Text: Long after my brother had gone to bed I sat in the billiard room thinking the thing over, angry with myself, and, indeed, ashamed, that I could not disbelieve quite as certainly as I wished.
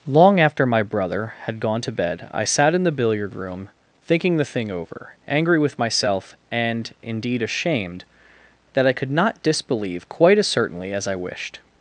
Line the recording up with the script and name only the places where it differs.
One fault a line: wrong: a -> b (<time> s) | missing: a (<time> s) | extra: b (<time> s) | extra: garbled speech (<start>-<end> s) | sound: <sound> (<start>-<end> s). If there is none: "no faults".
no faults